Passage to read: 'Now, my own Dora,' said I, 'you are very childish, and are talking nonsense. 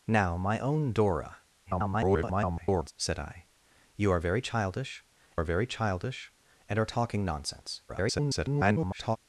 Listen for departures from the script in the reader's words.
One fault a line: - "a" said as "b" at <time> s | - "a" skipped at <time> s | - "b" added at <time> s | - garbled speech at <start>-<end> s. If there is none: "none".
- garbled speech at 1.6-2.9 s
- "are very childish" added at 5.3 s
- garbled speech at 7.9-9.2 s